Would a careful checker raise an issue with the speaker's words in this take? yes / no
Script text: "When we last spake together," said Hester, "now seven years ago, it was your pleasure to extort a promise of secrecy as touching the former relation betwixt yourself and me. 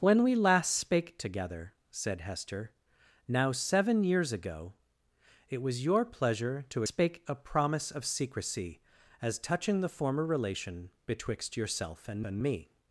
yes